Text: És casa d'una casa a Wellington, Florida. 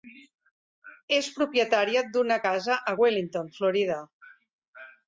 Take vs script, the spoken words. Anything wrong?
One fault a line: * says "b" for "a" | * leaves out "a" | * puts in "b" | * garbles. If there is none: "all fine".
* says "propietària" for "casa"